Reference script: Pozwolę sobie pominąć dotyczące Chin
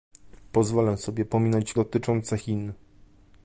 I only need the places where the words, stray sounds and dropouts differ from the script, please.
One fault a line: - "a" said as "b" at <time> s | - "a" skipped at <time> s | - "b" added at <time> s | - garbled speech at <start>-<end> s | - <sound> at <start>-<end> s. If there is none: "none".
none